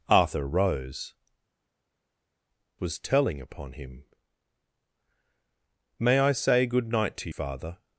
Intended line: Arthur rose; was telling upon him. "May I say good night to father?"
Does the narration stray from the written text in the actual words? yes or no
no